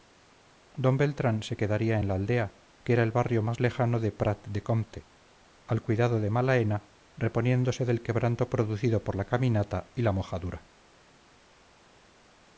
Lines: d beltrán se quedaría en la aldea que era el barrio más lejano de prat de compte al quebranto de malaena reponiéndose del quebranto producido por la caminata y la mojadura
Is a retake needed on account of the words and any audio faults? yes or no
yes